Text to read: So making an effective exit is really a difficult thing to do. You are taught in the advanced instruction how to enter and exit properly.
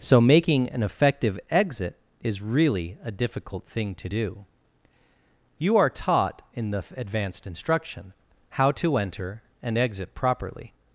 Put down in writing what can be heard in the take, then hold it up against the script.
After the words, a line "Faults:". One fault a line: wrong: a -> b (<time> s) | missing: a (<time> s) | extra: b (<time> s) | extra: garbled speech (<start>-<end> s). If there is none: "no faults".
So making an effective exit is really a difficult thing to do. You are taught in the advanced instruction how to enter and exit properly.
Faults:
no faults